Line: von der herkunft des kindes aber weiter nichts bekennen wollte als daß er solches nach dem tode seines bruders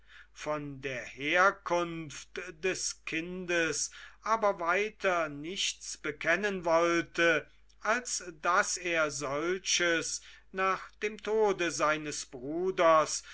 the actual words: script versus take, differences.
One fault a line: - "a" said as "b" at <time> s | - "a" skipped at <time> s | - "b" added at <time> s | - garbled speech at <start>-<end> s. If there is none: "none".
none